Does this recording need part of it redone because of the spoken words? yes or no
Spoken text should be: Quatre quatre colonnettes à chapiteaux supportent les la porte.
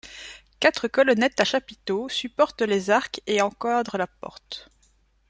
yes